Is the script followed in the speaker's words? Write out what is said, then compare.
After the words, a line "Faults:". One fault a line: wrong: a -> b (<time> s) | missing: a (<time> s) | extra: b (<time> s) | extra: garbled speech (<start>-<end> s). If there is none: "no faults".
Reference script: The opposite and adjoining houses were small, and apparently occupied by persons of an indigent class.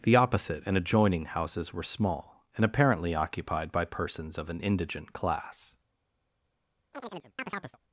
The opposite and adjoining houses were small, and apparently occupied by persons of an indigent class.
Faults:
no faults